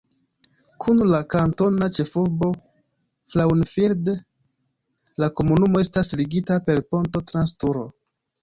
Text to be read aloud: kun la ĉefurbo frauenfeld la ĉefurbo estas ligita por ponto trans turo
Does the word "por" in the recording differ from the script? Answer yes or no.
yes